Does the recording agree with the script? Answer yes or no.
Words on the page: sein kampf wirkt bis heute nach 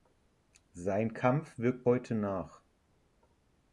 no